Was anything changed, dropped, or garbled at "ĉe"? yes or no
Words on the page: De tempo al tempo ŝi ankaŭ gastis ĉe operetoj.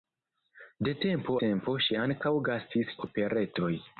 yes